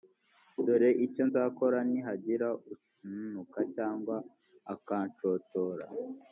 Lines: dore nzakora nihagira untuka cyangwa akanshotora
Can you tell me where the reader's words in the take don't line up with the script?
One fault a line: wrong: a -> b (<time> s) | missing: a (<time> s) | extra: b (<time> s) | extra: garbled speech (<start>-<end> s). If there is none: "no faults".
extra: icyo (1.1 s)